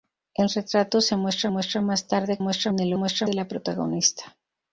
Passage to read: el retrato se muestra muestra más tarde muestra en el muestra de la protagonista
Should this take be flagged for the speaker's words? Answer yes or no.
no